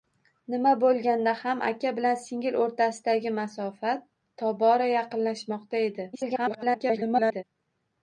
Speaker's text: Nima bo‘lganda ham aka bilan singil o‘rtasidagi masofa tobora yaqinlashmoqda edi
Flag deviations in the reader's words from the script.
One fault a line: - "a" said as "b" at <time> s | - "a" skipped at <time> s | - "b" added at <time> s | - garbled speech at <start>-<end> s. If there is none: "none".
- garbled speech at 6.1-7.4 s